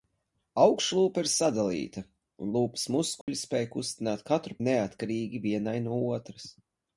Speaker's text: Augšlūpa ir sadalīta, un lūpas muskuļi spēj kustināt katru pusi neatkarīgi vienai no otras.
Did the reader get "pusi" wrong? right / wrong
wrong